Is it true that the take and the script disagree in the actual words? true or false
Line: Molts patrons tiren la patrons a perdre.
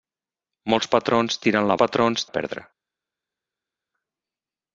false